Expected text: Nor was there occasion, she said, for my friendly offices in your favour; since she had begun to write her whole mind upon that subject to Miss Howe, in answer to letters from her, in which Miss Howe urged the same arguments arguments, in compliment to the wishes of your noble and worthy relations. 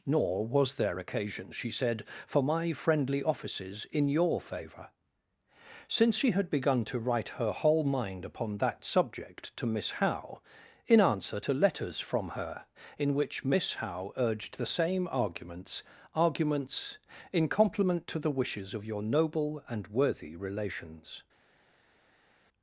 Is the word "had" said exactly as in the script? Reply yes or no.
yes